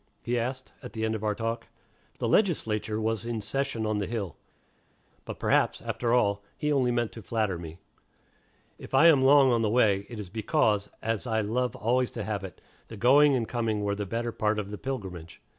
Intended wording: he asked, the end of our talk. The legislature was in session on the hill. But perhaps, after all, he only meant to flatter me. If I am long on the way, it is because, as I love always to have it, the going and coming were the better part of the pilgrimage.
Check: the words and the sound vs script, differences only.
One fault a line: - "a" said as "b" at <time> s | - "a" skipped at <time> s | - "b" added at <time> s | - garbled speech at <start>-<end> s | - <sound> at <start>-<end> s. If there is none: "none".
- "at" added at 0.8 s